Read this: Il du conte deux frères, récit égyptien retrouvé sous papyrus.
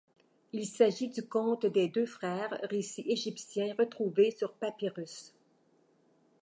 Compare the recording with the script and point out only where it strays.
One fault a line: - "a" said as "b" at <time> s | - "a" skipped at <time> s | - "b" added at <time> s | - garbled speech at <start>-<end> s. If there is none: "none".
- "s'agit" added at 0.7 s
- "des" added at 1.7 s
- "sous" said as "sur" at 4.3 s